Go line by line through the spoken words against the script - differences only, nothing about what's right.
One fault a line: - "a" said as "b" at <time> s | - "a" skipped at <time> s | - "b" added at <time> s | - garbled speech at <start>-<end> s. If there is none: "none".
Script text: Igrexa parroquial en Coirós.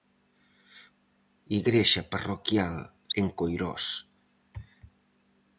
none